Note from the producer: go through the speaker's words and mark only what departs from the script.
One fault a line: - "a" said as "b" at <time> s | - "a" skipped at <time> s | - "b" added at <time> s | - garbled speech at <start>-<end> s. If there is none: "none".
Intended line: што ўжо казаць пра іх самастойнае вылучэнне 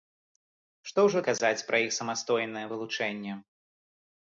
none